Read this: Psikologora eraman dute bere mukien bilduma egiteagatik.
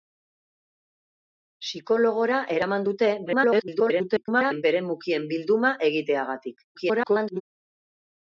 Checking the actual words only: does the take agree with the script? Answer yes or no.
no